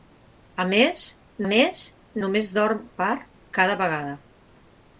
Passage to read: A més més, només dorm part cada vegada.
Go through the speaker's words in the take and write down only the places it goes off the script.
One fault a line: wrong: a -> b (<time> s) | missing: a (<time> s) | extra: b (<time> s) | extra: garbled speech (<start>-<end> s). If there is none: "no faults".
no faults